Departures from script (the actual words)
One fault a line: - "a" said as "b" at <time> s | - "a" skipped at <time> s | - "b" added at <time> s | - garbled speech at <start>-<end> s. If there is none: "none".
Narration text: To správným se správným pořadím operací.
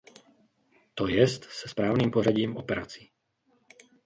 - "správným" said as "jest" at 1.1 s